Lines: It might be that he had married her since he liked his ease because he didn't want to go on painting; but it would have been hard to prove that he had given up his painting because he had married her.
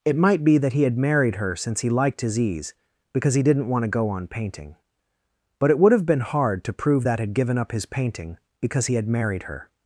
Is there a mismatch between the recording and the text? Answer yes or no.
yes